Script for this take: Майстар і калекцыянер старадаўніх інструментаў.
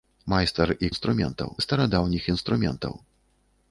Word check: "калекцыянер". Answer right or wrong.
wrong